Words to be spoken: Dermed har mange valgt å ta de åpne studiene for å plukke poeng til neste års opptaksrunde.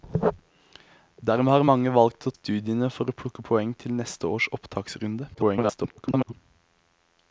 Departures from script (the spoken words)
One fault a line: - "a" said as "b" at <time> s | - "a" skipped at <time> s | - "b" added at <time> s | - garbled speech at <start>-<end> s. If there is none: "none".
- "ta de åpne" skipped at 2.3 s
- garbled speech at 5.3-6.3 s